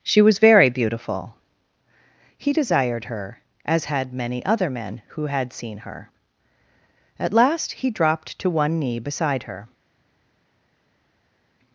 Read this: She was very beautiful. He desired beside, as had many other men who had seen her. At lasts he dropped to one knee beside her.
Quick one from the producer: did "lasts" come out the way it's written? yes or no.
no